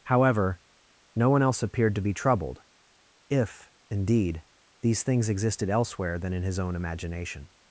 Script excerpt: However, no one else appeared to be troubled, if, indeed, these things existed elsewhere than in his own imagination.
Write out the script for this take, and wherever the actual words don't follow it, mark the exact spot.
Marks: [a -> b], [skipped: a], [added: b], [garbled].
However, no one else appeared to be troubled, if, indeed, these things existed elsewhere than in his own imagination.